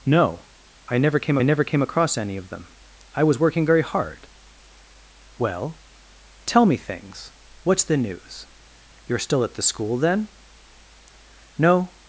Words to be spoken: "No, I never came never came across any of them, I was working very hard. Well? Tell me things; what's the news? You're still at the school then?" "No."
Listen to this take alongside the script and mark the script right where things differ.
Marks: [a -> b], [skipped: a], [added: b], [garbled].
"No, I never came never came across any of them, I was working very hard. Well? Tell me things; what's the news? You're still at the school then?" "No."